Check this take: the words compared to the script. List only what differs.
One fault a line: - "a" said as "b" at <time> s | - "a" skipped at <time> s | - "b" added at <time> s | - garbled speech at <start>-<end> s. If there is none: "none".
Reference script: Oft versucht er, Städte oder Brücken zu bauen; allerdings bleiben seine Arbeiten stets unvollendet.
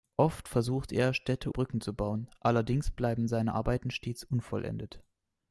- "oder" skipped at 1.5 s